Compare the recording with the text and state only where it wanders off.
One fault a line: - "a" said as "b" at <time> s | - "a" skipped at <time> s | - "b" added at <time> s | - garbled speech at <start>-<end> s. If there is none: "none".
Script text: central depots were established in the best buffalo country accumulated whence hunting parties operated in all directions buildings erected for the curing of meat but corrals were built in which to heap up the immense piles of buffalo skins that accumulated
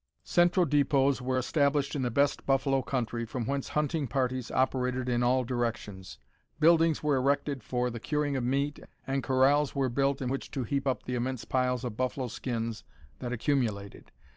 - "accumulated" said as "from" at 3.3 s
- "were" added at 7.0 s
- "but" said as "and" at 9.1 s